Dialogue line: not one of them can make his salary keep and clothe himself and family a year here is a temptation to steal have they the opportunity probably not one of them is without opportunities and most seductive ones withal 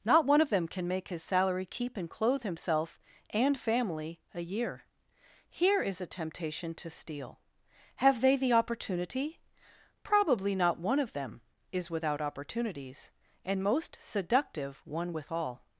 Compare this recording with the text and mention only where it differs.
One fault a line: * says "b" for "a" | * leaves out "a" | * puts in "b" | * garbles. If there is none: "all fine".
* says "one" for "ones"